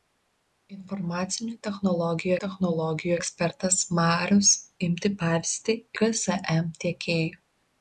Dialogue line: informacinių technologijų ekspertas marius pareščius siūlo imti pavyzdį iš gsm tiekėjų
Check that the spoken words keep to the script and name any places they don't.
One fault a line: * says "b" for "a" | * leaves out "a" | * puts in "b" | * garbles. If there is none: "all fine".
* puts in "technologijų"
* leaves out "pareščius siūlo"
* leaves out "iš"